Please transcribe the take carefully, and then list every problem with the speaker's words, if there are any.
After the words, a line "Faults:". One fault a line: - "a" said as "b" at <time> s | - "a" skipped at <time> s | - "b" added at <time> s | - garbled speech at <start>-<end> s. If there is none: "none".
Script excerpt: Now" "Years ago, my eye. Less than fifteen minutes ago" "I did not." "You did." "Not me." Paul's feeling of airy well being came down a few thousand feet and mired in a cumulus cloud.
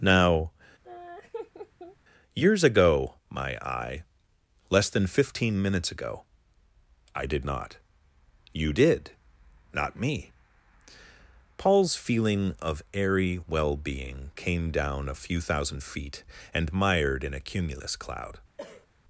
Now" "Years ago, my eye. Less than fifteen minutes ago" "I did not." "You did." "Not me." Paul's feeling of airy well being came down a few thousand feet and mired in a cumulus cloud.
Faults:
none